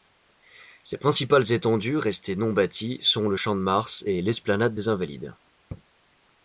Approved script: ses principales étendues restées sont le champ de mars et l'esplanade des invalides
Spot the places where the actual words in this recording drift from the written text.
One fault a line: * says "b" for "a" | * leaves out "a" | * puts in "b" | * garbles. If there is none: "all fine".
* puts in "non bâties"